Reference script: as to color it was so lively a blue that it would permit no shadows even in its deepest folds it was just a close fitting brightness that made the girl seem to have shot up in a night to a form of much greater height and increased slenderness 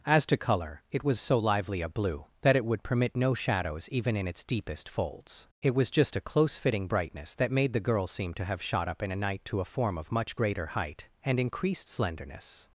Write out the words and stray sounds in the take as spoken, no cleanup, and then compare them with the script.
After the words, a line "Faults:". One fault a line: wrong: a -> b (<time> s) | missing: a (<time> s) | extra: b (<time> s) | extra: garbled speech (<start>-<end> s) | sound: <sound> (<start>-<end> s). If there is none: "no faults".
as to color it was so lively a blue that it would permit no shadows even in its deepest folds it was just a close fitting brightness that made the girl seem to have shot up in a night to a form of much greater height and increased slenderness
Faults:
no faults